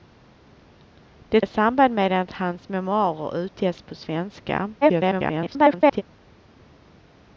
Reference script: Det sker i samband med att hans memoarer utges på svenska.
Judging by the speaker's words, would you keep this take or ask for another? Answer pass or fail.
fail